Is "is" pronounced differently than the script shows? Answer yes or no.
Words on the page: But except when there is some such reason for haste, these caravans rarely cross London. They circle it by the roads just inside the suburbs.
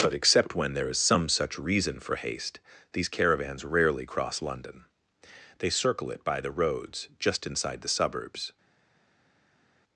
no